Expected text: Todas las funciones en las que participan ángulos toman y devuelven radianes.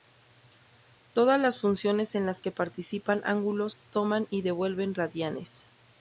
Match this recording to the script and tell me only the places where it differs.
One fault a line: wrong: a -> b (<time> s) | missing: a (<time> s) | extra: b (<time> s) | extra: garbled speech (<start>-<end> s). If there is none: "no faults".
no faults